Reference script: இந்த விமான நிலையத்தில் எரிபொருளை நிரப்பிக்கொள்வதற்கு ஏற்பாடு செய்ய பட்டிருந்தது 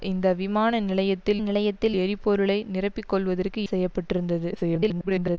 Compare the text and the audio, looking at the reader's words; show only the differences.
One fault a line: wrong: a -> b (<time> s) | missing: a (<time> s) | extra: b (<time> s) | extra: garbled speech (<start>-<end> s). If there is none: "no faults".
extra: நிலையத்தில் (1.4 s)
missing: ஏற்பாடு (3.6 s)
extra: garbled speech (4.5-5.4 s)